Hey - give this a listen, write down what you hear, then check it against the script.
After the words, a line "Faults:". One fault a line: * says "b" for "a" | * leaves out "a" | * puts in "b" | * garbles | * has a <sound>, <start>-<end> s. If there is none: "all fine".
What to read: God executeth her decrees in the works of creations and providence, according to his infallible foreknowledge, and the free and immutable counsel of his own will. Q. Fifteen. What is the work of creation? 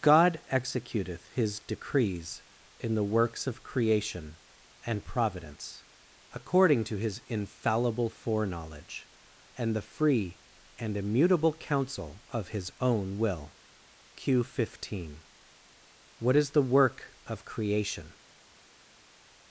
God executeth his decrees in the works of creation and providence, according to his infallible foreknowledge, and the free and immutable counsel of his own will. Q. Fifteen. What is the work of creation?
Faults:
* says "his" for "her"
* says "creation" for "creations"